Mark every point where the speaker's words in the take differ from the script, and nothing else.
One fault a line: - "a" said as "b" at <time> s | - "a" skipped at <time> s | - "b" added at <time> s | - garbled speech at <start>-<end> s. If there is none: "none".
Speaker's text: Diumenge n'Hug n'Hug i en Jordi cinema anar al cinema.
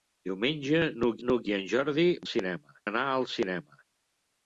none